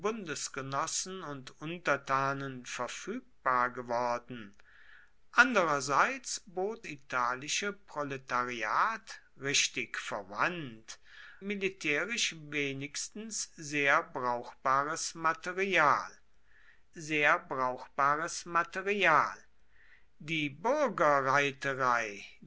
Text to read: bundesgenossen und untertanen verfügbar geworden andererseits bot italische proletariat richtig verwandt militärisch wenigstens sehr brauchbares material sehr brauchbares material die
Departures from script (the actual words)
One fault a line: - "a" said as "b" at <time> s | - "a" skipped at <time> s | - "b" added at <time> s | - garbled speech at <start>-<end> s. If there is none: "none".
none